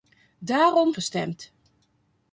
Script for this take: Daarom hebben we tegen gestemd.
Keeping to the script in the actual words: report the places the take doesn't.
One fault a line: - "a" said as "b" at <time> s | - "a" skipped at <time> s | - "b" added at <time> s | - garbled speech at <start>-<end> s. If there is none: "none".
- "hebben we tegen" skipped at 0.9 s